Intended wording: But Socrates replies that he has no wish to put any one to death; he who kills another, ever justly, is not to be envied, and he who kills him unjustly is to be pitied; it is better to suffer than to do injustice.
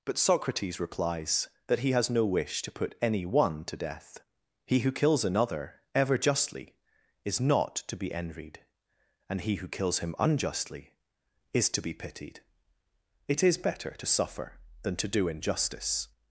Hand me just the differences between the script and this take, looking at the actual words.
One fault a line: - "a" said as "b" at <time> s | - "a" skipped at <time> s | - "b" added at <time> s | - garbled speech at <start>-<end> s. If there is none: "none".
none